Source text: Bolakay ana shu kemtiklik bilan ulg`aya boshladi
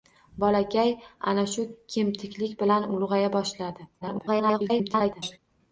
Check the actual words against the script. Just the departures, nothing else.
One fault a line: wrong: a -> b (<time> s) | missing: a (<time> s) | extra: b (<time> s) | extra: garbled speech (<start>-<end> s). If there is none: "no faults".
extra: garbled speech (4.0-5.4 s)